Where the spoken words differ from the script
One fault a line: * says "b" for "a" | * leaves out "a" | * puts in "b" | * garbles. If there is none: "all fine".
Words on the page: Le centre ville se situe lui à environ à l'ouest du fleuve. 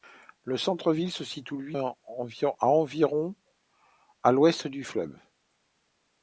all fine